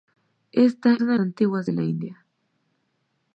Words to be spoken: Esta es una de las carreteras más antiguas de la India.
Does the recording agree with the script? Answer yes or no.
no